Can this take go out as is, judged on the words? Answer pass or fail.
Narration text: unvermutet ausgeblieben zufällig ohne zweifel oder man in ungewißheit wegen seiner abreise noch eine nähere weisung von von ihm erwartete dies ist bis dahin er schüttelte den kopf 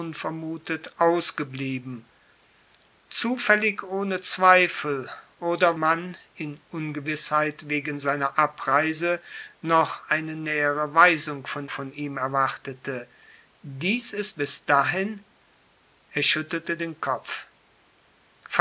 pass